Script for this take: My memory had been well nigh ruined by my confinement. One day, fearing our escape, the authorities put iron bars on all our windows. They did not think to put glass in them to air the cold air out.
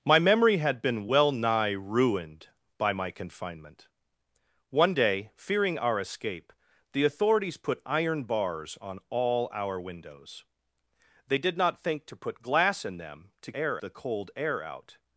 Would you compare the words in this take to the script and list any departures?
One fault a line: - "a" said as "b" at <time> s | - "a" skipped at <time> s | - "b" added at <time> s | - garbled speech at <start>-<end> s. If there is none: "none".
none